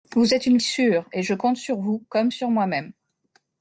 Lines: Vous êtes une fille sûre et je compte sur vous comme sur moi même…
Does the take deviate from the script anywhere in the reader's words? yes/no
yes